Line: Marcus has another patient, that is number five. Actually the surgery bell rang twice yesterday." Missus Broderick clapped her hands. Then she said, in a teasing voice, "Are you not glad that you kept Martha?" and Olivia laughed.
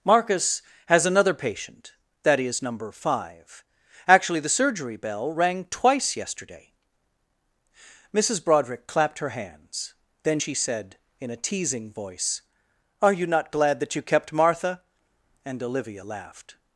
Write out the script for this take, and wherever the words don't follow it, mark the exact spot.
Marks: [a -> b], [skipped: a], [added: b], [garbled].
Marcus has another patient, that is number five. Actually the surgery bell rang twice yesterday." Missus Broderick clapped her hands. Then she said, in a teasing voice, "Are you not glad that you kept Martha?" and Olivia laughed.